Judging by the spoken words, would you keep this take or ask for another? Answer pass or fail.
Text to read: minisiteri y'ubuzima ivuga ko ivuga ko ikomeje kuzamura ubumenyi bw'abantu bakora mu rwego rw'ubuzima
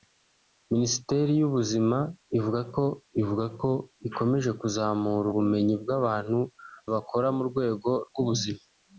pass